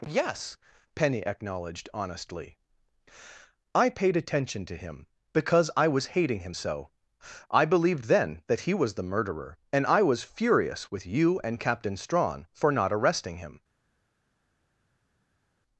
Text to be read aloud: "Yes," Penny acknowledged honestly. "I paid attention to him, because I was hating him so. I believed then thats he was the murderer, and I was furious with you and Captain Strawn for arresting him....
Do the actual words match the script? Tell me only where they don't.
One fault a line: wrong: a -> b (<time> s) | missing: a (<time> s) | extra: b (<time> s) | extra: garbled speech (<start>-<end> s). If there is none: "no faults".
wrong: thats -> that (8.5 s)
extra: not (12.7 s)